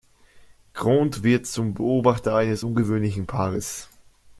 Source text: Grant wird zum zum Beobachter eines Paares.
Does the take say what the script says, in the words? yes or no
no